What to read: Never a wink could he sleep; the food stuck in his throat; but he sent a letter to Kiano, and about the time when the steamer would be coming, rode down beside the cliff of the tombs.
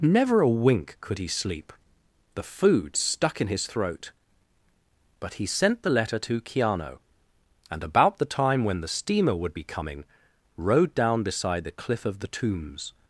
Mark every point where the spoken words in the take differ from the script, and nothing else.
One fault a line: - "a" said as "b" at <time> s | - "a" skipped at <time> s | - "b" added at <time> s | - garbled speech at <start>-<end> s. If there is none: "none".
- "a" said as "the" at 5.8 s